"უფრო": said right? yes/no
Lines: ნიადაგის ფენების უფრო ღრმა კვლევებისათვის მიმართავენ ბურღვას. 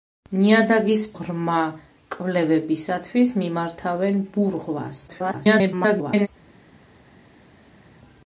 no